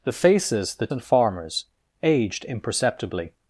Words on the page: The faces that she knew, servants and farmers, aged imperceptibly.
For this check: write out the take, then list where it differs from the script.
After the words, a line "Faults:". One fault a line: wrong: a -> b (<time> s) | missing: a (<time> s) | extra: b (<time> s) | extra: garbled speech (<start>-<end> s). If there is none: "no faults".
The faces that and farmers, aged imperceptibly.
Faults:
missing: she knew servants (0.9 s)